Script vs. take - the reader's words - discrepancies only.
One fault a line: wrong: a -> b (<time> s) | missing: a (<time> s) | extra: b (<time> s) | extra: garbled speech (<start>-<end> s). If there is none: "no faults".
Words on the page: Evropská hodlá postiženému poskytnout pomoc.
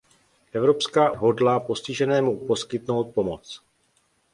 no faults